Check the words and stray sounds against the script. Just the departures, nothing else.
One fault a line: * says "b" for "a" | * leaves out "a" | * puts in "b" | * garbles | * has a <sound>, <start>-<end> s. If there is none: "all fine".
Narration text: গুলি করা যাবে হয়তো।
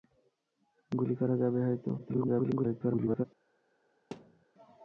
* garbles
* has a thud, 4.1-4.5 s